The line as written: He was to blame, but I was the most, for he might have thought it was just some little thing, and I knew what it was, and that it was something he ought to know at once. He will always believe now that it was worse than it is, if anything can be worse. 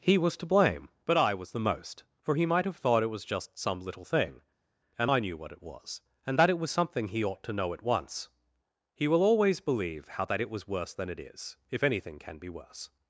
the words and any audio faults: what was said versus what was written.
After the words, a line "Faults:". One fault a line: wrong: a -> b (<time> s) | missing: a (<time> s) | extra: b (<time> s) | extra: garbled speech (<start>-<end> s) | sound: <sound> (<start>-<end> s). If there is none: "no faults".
He was to blame, but I was the most, for he might have thought it was just some little thing, and I knew what it was, and that it was something he ought to know at once. He will always believe how that it was worse than it is, if anything can be worse.
Faults:
wrong: now -> how (10.1 s)